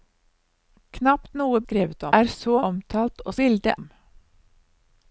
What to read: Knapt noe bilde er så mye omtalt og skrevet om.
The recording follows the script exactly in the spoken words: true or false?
false